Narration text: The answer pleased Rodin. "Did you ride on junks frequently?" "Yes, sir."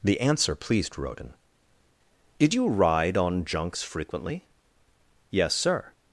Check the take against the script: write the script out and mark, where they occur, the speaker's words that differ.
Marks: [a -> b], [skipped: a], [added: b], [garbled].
The answer pleased Rodin. "Did you ride on junks frequently?" "Yes, sir."